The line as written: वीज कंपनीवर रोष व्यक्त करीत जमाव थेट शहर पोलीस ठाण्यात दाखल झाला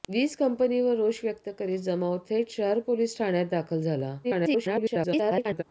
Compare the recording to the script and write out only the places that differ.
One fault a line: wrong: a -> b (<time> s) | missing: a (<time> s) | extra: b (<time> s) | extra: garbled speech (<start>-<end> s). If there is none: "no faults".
extra: garbled speech (4.2-5.6 s)